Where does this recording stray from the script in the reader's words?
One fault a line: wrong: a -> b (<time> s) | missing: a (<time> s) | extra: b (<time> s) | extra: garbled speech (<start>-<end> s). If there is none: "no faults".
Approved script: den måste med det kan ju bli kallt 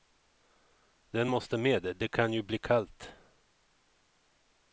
no faults